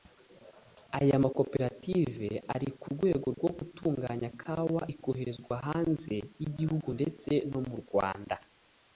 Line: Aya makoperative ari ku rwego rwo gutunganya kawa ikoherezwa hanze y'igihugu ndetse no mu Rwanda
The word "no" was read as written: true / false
true